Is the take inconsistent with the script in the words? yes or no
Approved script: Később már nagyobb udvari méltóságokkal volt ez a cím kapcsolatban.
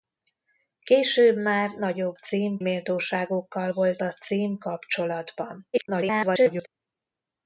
yes